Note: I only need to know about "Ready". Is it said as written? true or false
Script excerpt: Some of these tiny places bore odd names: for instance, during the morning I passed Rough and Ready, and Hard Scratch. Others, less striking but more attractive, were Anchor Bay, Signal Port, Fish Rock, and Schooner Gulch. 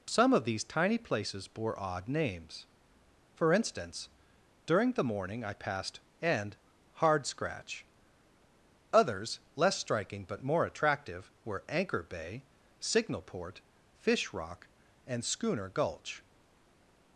false